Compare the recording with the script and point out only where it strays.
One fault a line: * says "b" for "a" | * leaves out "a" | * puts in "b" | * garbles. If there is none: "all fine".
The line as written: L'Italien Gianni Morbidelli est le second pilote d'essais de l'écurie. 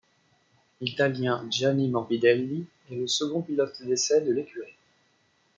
all fine